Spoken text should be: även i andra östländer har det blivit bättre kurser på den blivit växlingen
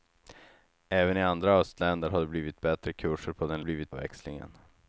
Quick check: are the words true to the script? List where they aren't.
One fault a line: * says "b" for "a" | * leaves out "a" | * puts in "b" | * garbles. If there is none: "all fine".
all fine